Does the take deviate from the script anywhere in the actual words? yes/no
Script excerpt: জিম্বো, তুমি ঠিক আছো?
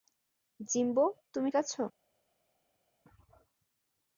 yes